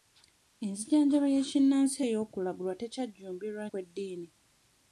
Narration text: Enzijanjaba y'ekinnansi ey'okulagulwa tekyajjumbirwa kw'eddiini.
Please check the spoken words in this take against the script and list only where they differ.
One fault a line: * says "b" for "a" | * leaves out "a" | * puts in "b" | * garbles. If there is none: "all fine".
all fine